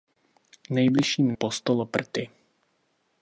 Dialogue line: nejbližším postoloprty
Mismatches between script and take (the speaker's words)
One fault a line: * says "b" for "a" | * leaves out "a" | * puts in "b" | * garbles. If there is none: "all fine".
all fine